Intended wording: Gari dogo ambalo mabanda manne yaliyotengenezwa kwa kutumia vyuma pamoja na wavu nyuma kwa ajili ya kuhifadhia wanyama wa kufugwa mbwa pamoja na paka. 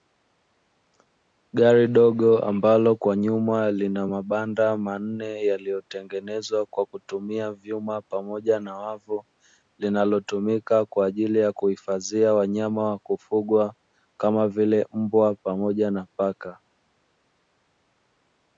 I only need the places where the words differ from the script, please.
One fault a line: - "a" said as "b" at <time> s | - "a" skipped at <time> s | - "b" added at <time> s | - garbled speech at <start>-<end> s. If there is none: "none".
- "kwa nyuma lina" added at 3.0 s
- "nyuma" said as "linalotumika" at 9.8 s
- "kama vile" added at 14.2 s